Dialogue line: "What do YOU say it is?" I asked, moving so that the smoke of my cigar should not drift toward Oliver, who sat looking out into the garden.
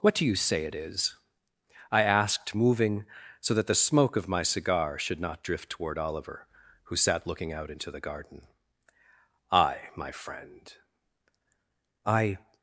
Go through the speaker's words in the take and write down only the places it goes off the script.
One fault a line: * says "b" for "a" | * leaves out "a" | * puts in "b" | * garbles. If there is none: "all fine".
* puts in "I my friend I"